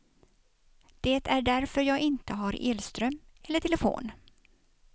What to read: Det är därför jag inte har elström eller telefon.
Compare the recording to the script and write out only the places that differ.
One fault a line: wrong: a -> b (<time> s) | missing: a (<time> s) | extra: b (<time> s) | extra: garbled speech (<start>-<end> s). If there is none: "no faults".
no faults